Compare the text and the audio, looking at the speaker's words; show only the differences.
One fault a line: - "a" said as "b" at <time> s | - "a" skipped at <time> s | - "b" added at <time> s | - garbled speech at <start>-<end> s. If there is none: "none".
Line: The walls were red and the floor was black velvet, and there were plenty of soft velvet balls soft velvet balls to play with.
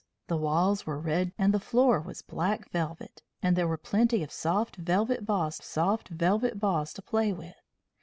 none